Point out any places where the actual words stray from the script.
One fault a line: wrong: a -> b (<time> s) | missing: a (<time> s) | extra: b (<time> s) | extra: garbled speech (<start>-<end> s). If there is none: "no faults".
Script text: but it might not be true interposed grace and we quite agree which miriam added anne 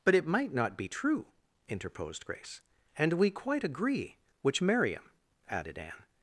no faults